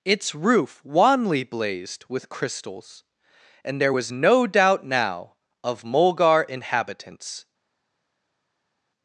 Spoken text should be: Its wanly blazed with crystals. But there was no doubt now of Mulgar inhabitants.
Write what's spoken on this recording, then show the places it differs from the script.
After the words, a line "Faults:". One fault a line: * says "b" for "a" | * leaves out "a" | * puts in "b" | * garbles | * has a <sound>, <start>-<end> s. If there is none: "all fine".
Its roof wanly blazed with crystals. And there was no doubt now of Mulgar inhabitants.
Faults:
* puts in "roof"
* says "And" for "But"